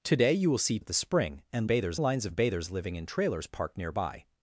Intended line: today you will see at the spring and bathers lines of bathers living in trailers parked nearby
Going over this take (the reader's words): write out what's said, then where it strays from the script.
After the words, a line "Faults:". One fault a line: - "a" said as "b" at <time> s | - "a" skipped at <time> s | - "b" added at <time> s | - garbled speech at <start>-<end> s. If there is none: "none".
today you will see at the spring and bathers lines of bathers living in trailers parked nearby
Faults:
none